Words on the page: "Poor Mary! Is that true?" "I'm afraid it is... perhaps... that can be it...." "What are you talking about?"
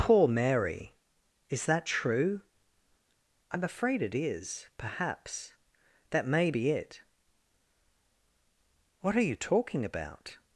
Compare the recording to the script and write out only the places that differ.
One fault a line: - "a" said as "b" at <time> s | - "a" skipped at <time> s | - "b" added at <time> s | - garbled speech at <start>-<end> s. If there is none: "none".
- "can" said as "may" at 6.2 s